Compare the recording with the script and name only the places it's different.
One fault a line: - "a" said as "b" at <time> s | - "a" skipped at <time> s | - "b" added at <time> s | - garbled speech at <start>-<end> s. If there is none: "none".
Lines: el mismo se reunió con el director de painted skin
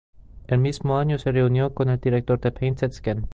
- "año" added at 1.0 s